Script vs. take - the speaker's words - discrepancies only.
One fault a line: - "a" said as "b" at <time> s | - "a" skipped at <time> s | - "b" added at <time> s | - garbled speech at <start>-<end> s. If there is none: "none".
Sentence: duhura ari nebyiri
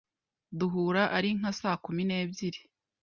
- "nka saa kumi" added at 1.4 s